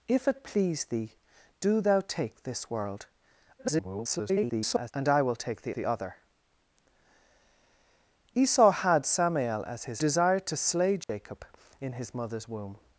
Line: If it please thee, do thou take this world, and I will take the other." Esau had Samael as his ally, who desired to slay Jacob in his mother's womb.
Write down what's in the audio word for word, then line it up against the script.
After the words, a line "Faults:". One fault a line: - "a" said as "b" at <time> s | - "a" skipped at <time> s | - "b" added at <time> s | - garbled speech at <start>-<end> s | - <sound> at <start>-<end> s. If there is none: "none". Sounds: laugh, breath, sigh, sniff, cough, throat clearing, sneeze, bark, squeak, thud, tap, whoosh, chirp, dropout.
If it please thee, do thou take this world, [garbled] and I will take the the other." Esau had Samael as his desired to slay Jacob in his mother's womb.
Faults:
- garbled speech at 3.6-4.9 s
- "the" added at 5.7 s
- "ally who" skipped at 10.0 s
- dropout at 11.0-11.1 s